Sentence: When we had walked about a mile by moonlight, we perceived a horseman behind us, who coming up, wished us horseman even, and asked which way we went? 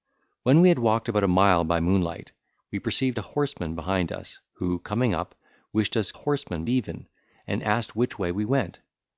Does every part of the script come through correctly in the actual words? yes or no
yes